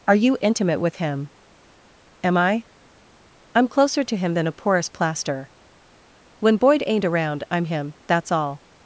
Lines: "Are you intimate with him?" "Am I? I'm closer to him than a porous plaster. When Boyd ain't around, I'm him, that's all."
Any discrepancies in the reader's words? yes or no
no